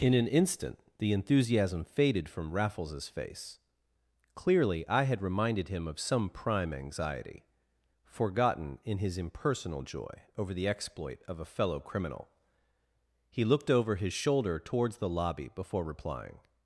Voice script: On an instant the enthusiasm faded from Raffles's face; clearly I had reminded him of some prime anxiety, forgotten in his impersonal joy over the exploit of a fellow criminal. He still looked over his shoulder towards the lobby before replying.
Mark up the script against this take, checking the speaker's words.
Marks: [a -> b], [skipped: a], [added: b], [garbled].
[On -> In] an instant the enthusiasm faded from Raffles's face; clearly I had reminded him of some prime anxiety, forgotten in his impersonal joy over the exploit of a fellow criminal. He [skipped: still] looked over his shoulder towards the lobby before replying.